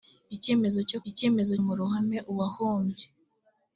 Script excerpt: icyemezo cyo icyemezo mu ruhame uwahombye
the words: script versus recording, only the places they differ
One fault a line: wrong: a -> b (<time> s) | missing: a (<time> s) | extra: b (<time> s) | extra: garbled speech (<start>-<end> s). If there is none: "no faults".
no faults